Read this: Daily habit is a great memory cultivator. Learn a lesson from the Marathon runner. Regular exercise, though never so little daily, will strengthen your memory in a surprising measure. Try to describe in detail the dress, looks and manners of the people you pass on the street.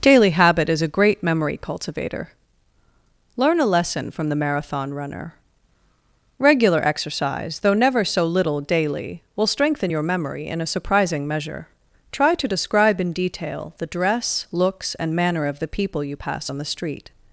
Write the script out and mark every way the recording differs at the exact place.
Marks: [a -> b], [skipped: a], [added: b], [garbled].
Daily habit is a great memory cultivator. Learn a lesson from the Marathon runner. Regular exercise, though never so little daily, will strengthen your memory in a surprising measure. Try to describe in detail the dress, looks and [manners -> manner] of the people you pass on the street.